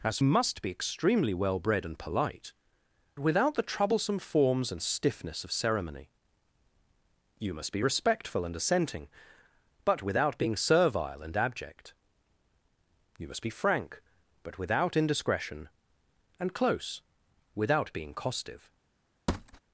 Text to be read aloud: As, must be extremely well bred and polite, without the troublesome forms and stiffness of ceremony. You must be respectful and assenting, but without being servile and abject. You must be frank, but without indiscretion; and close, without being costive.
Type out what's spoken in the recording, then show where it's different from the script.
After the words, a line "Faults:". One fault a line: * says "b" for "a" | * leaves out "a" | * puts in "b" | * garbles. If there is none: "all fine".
As, must be extremely well bred and polite, without the troublesome forms and stiffness of ceremony. You must be respectful and assenting, but without being servile and abject. You must be frank, but without indiscretion; and close, without being costive.
Faults:
all fine